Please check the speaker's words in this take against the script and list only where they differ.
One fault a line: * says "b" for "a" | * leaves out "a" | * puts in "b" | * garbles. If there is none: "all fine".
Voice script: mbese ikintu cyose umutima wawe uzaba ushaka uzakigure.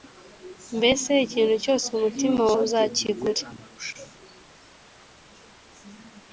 * leaves out "wawe uzaba ushaka"